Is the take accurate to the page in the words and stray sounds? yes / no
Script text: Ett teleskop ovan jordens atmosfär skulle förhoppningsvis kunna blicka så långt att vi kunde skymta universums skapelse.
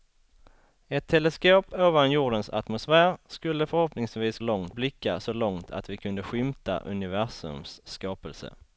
no